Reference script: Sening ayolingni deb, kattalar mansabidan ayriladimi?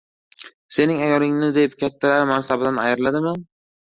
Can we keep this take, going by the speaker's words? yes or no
yes